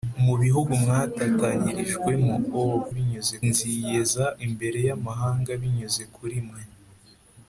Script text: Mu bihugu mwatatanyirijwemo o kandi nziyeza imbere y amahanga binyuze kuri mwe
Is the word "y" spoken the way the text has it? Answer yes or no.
yes